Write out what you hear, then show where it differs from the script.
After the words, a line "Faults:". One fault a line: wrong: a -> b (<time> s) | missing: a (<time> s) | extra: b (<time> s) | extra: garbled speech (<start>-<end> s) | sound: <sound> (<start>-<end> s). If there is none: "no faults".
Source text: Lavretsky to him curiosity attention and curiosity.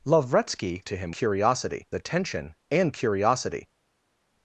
Lavretsky to him curiosity attention and curiosity.
Faults:
no faults